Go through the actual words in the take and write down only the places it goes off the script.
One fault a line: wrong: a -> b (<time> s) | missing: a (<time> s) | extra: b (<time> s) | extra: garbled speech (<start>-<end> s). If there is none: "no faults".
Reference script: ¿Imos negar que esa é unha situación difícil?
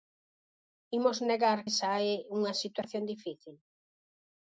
missing: que (1.6 s)